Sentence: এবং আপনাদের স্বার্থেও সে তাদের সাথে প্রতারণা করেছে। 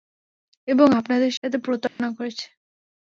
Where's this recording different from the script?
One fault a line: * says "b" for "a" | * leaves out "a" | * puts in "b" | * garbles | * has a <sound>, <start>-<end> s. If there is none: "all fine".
* leaves out "স্বার্থেও সে তাদের"
* has a dropout, 1.9-2.0 s